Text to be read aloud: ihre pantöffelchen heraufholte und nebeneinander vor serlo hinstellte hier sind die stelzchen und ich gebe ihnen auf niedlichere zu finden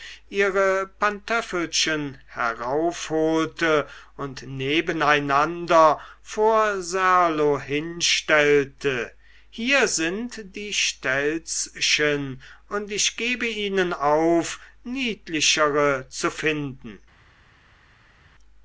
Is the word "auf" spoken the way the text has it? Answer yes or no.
yes